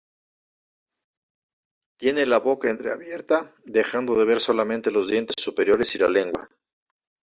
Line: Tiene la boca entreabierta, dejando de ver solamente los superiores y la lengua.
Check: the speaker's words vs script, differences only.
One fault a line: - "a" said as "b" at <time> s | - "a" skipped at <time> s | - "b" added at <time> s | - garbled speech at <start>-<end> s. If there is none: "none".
- "dientes" added at 5.1 s